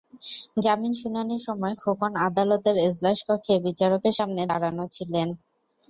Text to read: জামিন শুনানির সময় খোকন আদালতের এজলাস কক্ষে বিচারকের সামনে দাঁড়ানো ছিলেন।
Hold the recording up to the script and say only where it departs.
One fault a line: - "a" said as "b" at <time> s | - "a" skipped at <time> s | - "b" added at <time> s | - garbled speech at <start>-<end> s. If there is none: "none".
none